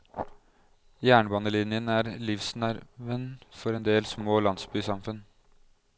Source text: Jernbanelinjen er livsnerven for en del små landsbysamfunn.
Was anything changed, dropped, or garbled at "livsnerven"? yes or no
no